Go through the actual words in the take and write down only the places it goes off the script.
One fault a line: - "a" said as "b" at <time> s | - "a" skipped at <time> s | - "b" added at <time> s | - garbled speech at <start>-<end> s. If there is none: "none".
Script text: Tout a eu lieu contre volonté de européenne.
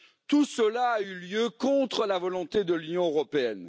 - "cela" added at 0.5 s
- "la" added at 2.0 s
- "l'Union" added at 2.7 s